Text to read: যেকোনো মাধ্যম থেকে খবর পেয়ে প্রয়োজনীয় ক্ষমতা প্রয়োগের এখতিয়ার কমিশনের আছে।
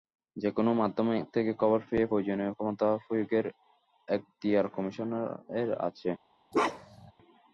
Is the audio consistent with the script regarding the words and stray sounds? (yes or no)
no